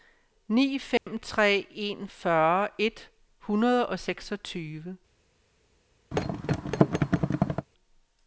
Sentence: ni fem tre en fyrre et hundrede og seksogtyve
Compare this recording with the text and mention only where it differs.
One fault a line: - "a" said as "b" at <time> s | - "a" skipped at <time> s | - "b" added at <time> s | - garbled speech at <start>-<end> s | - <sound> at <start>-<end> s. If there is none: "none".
- dropout at 1.0-1.1 s
- thud at 6.1-7.7 s